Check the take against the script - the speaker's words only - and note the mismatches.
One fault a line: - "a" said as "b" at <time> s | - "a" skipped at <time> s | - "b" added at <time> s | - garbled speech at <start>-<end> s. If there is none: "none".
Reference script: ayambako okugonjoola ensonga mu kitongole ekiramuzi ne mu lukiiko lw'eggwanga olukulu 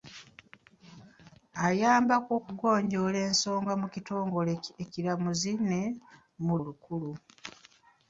- "lukiiko lw'eggwanga" skipped at 6.5 s